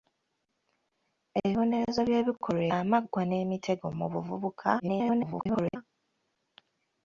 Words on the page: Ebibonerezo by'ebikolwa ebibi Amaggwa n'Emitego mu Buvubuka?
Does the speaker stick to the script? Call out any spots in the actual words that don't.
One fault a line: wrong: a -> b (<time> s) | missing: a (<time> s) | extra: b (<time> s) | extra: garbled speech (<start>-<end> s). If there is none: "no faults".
missing: ebibi (2.6 s)
extra: garbled speech (4.8-5.8 s)